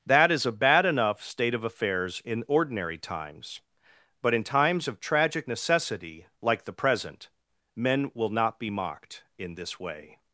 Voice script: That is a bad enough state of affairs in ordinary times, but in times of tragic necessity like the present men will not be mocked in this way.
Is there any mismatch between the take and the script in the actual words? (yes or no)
no